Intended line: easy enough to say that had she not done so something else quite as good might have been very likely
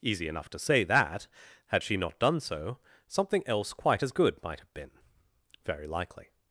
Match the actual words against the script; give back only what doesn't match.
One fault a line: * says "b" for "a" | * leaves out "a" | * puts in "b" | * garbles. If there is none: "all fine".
all fine